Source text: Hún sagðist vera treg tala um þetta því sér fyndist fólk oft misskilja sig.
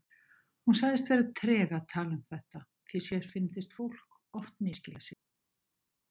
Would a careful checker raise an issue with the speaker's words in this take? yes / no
yes